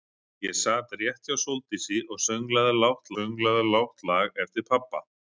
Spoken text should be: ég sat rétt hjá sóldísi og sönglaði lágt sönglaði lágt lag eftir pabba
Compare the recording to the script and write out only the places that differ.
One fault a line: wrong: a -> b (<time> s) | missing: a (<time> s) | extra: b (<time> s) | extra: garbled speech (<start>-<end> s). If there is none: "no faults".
no faults